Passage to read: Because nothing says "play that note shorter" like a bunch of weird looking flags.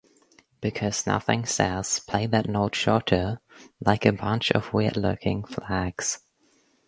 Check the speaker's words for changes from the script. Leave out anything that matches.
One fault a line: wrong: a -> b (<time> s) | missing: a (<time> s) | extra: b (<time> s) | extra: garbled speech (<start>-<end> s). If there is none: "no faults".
no faults